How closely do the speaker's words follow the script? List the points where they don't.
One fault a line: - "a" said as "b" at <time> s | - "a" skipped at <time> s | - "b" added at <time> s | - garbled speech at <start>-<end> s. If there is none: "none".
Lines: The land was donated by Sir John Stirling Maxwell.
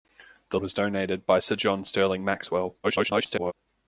- "land" skipped at 0.6 s
- garbled speech at 2.8-3.5 s